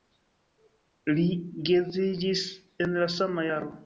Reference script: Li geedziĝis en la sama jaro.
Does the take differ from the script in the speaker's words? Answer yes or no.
no